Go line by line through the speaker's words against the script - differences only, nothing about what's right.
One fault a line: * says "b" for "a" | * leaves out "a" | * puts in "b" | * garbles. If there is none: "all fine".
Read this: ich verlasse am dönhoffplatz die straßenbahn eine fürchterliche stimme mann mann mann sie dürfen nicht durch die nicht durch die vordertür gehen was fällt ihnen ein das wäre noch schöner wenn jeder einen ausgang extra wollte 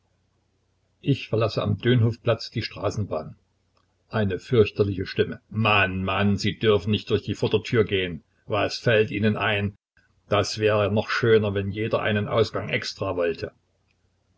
* leaves out "mann"
* leaves out "nicht durch die"